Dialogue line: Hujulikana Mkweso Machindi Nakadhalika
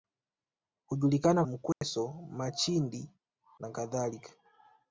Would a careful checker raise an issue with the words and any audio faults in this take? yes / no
yes